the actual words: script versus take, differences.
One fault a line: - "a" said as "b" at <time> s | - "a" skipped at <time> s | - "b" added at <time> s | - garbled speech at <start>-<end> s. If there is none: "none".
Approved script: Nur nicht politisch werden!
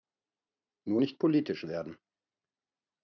none